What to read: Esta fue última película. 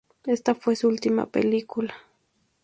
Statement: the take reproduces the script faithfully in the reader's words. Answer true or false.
false